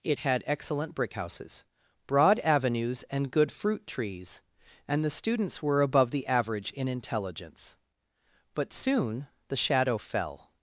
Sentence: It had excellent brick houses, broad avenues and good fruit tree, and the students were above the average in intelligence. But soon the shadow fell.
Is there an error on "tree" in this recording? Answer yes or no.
yes